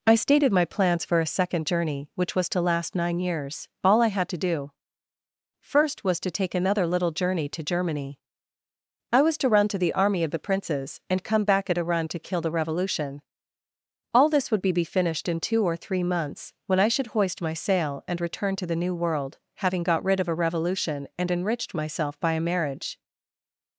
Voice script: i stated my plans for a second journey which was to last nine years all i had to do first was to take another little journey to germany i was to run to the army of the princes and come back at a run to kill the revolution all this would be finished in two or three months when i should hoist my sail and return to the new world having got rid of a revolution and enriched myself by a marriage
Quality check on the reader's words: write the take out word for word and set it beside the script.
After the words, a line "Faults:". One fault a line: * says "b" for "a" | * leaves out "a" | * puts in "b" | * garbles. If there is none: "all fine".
i stated my plans for a second journey which was to last nine years all i had to do first was to take another little journey to germany i was to run to the army of the princes and come back at a run to kill the revolution all this would be be finished in two or three months when i should hoist my sail and return to the new world having got rid of a revolution and enriched myself by a marriage
Faults:
* puts in "be"